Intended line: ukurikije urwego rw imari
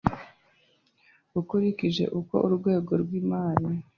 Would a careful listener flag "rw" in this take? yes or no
no